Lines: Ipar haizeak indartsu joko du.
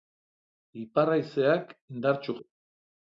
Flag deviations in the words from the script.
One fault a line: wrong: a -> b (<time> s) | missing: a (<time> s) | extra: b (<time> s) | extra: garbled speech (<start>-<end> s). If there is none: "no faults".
missing: joko (2.4 s)